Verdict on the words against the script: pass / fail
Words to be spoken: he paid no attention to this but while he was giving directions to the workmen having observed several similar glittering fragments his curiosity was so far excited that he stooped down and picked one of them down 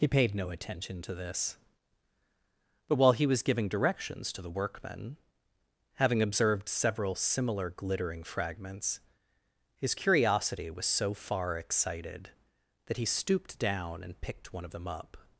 fail